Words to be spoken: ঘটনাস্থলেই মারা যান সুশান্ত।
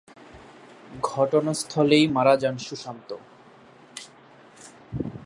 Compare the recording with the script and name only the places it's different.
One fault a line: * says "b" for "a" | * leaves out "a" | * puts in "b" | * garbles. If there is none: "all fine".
all fine